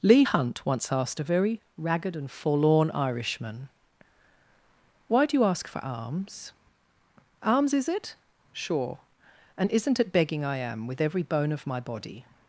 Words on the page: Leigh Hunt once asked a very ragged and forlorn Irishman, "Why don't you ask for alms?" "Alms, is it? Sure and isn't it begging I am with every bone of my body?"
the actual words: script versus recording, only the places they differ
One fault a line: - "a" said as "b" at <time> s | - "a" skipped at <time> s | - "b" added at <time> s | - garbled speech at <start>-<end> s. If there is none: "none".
- "don't" said as "do" at 5.3 s